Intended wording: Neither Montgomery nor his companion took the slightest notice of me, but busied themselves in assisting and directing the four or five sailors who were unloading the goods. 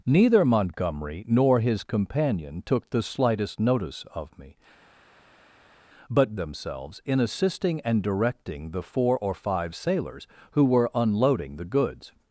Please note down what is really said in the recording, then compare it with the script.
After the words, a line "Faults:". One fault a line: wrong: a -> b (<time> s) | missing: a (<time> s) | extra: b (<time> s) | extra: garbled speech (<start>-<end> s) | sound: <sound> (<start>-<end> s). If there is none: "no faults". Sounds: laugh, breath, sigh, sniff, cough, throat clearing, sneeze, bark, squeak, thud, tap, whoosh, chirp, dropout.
Neither Montgomery nor his companion took the slightest notice of me, but themselves in assisting and directing the four or five sailors who were unloading the goods.
Faults:
missing: busied (6.4 s)